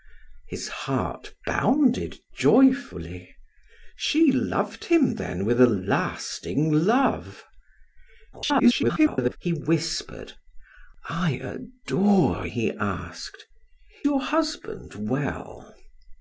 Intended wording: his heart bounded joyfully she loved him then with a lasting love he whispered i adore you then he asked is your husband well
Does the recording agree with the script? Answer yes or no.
no